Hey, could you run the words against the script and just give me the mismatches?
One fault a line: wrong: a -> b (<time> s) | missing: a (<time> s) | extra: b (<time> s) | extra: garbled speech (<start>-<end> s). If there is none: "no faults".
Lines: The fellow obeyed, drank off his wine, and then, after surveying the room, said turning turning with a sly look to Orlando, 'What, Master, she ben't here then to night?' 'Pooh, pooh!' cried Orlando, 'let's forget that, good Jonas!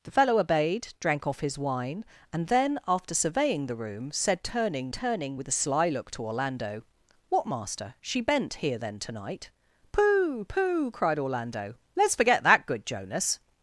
no faults